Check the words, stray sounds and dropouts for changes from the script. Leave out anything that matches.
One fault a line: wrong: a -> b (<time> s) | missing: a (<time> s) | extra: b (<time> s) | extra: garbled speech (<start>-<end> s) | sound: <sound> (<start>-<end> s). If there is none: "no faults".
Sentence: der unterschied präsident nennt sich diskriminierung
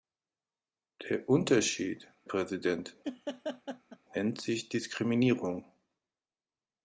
sound: laugh (3.0-4.0 s)